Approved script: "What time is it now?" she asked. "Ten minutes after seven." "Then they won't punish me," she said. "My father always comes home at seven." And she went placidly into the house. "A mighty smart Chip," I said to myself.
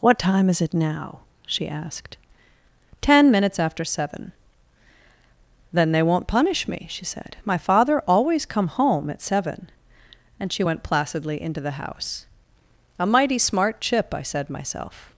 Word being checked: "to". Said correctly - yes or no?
no